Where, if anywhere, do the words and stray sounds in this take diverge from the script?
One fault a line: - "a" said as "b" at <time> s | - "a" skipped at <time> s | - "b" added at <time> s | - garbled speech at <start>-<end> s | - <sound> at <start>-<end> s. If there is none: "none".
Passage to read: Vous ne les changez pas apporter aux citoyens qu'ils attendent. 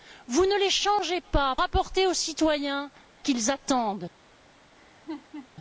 - laugh at 4.8-5.5 s